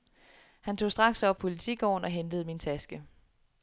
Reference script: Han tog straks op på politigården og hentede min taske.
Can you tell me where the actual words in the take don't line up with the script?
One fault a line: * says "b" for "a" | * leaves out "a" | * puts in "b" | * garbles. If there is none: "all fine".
* leaves out "på"